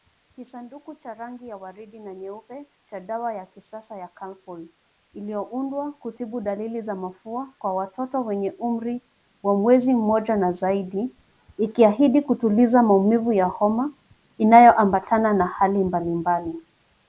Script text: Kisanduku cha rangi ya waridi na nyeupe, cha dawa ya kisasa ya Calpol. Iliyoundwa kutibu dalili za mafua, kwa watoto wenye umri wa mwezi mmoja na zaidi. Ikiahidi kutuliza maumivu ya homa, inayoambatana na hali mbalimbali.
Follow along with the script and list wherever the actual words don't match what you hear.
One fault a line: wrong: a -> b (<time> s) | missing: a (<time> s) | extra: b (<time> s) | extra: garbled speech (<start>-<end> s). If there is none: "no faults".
no faults